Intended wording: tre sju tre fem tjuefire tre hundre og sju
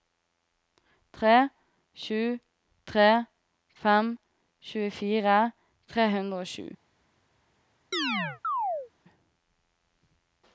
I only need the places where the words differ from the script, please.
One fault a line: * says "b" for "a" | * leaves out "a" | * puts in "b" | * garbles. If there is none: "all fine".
all fine